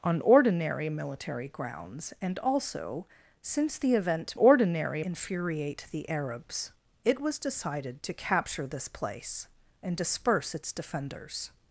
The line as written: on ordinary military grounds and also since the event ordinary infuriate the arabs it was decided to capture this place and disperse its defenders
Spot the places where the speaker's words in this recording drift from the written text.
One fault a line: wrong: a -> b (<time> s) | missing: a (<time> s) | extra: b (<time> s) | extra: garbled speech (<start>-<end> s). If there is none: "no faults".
no faults